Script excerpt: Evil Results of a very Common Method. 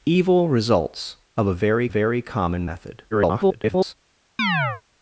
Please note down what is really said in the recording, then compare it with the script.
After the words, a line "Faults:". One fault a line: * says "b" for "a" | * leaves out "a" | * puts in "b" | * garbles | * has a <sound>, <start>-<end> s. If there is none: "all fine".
Evil Results of a very very Common Method. [garbled]
Faults:
* puts in "very"
* garbles
* has a chirp, 4.4-4.8 s